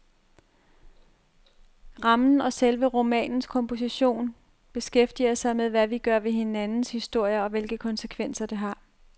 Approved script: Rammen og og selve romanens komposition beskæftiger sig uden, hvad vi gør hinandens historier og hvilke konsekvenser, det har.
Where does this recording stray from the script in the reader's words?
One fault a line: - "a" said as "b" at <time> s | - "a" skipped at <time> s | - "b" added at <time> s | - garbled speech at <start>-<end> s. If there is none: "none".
- "og" skipped at 2.5 s
- "uden" said as "med" at 5.5 s
- "ved" added at 6.2 s